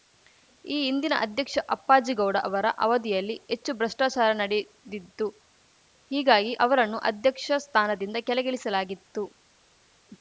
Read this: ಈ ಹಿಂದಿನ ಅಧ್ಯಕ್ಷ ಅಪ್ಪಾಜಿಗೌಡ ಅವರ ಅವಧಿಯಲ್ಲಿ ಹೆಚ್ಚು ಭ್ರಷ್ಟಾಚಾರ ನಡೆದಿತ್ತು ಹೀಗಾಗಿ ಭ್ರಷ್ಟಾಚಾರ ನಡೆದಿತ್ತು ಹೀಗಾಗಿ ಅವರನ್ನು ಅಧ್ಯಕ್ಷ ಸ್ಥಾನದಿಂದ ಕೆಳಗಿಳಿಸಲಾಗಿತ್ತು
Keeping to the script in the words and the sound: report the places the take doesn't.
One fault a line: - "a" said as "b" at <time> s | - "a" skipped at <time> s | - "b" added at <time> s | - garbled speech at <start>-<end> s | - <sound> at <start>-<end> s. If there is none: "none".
- "ಭ್ರಷ್ಟಾಚಾರ ನಡೆದಿತ್ತು ಹೀಗಾಗಿ" skipped at 6.5 s